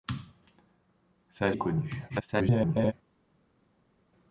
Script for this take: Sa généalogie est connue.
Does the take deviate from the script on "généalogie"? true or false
true